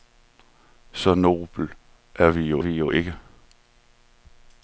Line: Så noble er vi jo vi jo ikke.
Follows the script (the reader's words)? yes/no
yes